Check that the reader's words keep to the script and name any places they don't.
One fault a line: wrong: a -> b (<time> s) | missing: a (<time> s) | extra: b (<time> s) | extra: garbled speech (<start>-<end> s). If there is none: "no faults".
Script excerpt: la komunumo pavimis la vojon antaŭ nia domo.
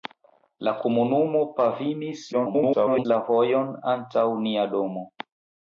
extra: garbled speech (2.3-3.1 s)